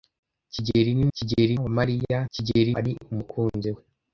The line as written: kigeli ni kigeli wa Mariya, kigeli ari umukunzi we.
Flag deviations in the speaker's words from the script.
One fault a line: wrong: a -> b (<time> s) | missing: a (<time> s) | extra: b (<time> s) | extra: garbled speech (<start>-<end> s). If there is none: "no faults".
no faults